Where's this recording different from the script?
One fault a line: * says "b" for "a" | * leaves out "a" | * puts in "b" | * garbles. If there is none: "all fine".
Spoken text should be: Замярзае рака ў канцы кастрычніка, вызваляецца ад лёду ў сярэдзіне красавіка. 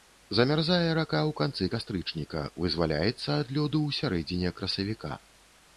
all fine